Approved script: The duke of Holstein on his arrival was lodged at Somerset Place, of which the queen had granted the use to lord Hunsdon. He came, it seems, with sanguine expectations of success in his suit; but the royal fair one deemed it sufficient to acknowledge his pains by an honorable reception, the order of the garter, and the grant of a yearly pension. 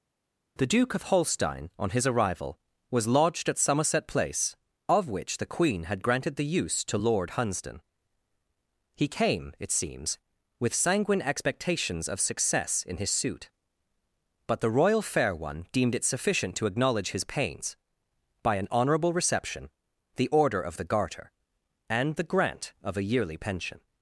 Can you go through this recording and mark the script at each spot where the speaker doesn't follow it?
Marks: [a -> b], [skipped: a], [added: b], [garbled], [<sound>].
The duke of Holstein on his arrival was lodged at Somerset Place, of which the queen had granted the use to lord Hunsdon. He came, it seems, with sanguine expectations of success in his suit; but the royal fair one deemed it sufficient to acknowledge his pains by an honorable reception, the order of the garter, and the grant of a yearly pension.